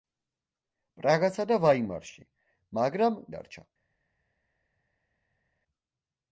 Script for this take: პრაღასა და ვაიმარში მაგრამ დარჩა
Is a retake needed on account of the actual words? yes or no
no